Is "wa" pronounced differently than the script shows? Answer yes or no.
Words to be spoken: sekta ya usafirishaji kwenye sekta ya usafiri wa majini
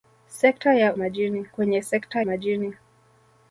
yes